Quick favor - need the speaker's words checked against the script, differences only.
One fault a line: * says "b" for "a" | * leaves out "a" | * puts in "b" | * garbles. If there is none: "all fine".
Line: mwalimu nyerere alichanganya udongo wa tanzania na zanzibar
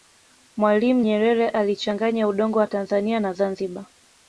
all fine